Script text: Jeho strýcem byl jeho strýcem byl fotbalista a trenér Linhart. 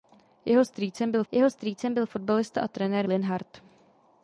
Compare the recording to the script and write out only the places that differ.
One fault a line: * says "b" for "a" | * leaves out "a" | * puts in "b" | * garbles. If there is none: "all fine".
all fine